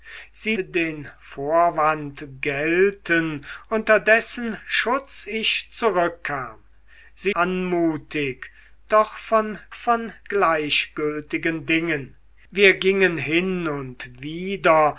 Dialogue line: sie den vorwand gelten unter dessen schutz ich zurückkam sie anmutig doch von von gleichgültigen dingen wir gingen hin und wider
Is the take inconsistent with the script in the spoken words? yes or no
no